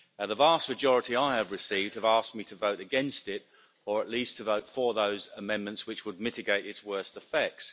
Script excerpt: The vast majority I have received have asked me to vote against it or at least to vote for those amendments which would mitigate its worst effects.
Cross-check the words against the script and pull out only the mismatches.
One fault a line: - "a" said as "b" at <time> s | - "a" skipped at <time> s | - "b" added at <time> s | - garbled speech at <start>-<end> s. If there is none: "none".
none